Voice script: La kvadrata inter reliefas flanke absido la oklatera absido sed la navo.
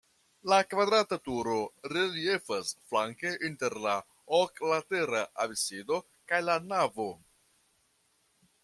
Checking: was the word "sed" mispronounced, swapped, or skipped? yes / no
yes